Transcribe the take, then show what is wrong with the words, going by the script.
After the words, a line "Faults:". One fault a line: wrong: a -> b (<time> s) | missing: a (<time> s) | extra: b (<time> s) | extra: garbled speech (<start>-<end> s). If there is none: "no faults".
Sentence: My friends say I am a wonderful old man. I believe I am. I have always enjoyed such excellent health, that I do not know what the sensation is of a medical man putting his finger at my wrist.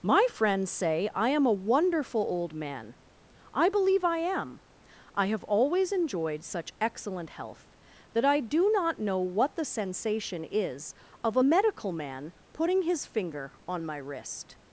My friends say I am a wonderful old man. I believe I am. I have always enjoyed such excellent health, that I do not know what the sensation is of a medical man putting his finger on my wrist.
Faults:
wrong: at -> on (13.7 s)